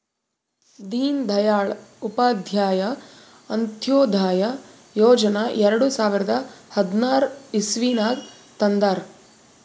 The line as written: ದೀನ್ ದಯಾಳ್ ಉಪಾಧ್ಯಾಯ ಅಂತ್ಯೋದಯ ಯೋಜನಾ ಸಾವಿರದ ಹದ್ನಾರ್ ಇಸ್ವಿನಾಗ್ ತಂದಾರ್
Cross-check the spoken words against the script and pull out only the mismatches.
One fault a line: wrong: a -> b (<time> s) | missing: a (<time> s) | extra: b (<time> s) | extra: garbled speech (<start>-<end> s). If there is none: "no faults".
extra: ಎರಡು (5.6 s)